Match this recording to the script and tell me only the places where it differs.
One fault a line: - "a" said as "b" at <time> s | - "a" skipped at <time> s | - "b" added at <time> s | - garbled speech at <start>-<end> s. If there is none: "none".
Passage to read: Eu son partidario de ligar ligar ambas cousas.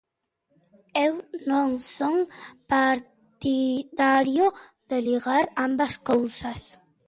- "non" added at 1.5 s
- "ligar" skipped at 5.5 s